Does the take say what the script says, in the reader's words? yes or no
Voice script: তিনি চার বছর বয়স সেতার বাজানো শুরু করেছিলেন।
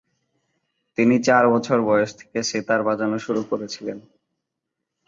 no